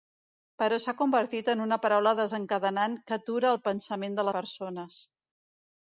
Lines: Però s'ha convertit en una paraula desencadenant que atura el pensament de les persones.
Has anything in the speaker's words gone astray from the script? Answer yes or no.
yes